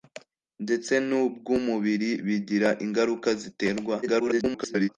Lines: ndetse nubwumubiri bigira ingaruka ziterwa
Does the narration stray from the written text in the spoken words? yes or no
yes